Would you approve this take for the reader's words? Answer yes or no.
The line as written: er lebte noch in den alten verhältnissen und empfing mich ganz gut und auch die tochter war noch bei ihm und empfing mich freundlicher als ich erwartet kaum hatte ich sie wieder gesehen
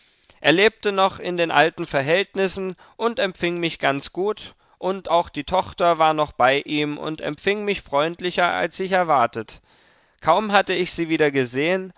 yes